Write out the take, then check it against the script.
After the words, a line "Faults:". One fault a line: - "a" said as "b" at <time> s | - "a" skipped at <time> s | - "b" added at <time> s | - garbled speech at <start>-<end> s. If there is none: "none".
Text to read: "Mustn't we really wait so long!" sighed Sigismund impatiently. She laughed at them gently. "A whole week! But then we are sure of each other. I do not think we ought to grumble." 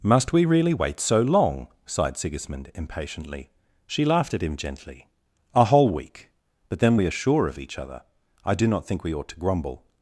"Must we really wait so long!" sighed Sigismund impatiently. She laughed at him gently. "A whole week! But then we are sure of each other. I do not think we ought to grumble."
Faults:
- "Mustn't" said as "Must" at 0.0 s
- "them" said as "him" at 4.4 s